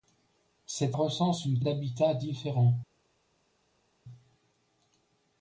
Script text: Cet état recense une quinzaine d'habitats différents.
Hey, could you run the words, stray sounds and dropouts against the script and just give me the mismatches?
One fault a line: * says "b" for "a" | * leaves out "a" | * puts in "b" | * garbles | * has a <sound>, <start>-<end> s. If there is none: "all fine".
* leaves out "état"
* leaves out "quinzaine"